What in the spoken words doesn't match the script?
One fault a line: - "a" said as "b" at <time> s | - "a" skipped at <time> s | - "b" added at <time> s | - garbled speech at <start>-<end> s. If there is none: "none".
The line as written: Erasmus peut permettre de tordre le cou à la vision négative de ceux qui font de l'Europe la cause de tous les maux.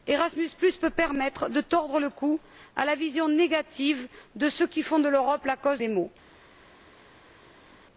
- "de tous" skipped at 5.8 s